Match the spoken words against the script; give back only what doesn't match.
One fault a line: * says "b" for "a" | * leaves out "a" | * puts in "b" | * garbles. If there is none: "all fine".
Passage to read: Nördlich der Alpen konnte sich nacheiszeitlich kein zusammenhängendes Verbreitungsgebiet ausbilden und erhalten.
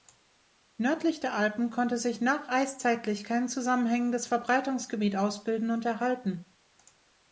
all fine